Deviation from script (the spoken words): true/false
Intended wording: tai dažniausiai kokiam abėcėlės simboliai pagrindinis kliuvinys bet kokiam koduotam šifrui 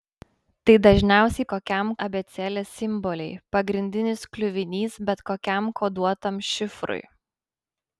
false